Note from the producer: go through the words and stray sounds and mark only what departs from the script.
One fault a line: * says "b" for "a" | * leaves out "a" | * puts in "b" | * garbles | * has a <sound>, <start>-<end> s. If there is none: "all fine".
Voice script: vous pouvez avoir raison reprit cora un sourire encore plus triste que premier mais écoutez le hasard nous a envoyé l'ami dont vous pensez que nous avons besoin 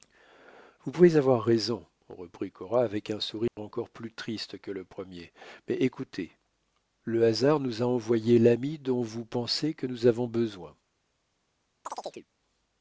* puts in "avec"
* has a dropout, 3.5-3.6 s
* puts in "le"
* has a chirp, 11.9-12.3 s